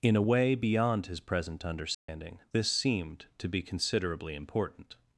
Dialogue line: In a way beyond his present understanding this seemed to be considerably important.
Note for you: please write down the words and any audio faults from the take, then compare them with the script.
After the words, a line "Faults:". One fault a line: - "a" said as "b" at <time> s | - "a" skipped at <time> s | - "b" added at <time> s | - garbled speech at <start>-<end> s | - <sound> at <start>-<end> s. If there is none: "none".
In a way beyond his present understanding this seemed to be considerably important.
Faults:
- dropout at 1.9-2.1 s